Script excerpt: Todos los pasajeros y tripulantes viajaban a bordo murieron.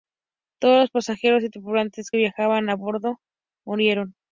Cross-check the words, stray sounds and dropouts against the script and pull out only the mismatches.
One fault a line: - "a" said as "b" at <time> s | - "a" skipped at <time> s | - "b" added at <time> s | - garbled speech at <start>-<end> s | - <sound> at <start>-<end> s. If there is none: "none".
none